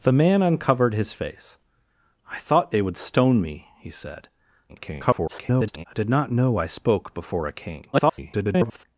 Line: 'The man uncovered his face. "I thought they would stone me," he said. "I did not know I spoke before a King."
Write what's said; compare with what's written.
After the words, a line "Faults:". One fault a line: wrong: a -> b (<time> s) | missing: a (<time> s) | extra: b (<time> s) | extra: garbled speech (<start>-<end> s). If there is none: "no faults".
'The man uncovered his face. "I thought they would stone me," he said. [garbled] "I did not know I spoke before a King." [garbled]
Faults:
extra: garbled speech (4.7-5.9 s)
extra: garbled speech (7.9-8.8 s)